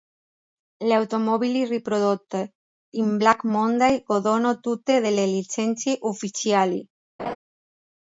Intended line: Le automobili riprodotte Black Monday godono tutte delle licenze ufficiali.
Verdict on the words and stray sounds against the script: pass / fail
fail